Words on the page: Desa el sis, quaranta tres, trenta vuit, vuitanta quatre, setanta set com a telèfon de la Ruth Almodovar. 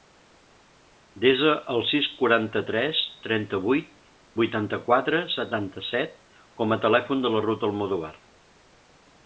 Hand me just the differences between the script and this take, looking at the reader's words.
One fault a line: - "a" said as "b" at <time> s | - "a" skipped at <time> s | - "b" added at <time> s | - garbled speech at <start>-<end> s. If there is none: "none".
none